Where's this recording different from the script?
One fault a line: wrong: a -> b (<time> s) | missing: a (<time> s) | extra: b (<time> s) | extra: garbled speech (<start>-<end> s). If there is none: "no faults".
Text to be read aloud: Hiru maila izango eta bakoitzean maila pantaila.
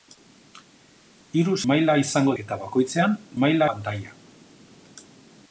no faults